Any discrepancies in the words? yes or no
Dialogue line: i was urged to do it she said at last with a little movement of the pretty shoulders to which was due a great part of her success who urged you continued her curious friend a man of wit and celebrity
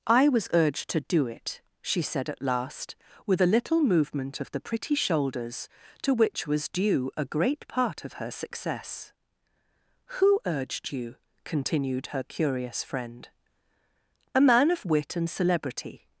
no